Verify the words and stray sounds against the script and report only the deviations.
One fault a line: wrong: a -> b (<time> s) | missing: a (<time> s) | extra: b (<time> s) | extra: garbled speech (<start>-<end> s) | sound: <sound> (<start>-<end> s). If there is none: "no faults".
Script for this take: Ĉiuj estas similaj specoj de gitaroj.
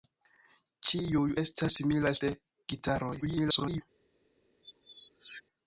missing: specoj (2.1 s)
extra: garbled speech (3.2-3.8 s)
sound: squeak (4.6-5.4 s)